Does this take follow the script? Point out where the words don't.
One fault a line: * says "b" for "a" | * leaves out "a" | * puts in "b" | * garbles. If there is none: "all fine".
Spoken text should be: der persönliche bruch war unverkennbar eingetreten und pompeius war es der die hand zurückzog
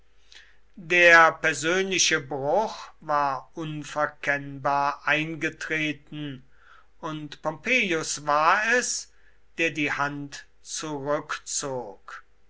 all fine